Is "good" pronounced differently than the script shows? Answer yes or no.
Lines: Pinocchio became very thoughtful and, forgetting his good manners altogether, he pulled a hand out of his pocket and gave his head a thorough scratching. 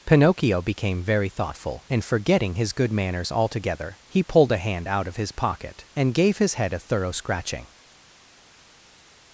no